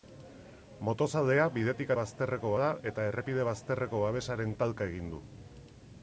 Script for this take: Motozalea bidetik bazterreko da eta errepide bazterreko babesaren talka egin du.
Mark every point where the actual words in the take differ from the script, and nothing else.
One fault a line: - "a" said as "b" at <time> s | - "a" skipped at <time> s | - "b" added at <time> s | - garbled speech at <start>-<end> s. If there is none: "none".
none